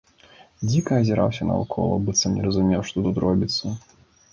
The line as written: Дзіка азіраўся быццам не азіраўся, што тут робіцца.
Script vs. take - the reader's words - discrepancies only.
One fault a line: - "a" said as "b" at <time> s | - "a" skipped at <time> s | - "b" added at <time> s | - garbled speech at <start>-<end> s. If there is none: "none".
- "наўкола" added at 1.5 s
- "азіраўся" said as "разумеў" at 2.5 s